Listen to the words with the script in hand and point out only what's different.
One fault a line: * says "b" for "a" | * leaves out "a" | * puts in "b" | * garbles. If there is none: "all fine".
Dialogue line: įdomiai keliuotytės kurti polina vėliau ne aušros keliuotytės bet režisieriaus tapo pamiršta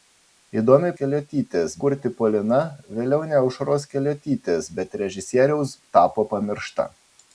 all fine